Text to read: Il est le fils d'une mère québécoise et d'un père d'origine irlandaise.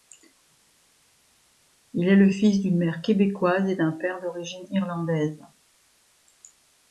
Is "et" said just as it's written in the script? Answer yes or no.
yes